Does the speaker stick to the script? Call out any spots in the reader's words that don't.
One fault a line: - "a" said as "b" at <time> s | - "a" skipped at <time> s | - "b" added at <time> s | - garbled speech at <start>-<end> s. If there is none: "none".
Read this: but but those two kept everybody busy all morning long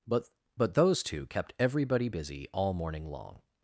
none